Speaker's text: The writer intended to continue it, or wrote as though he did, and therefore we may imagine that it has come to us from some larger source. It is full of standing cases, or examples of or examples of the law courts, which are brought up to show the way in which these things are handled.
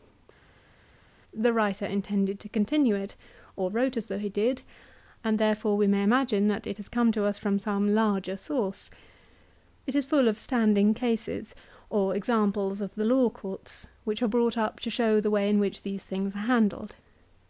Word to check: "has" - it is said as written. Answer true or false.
true